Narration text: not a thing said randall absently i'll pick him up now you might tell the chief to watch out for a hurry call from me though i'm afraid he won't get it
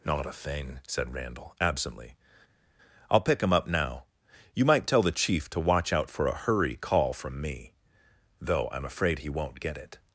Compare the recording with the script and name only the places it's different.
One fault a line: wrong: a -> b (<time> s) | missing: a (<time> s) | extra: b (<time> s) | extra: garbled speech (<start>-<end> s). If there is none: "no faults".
no faults